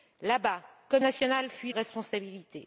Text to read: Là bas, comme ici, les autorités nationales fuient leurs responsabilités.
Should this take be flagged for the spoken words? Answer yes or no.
yes